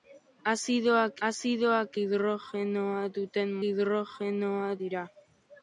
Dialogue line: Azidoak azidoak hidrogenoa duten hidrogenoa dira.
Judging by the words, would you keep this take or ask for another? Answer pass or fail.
pass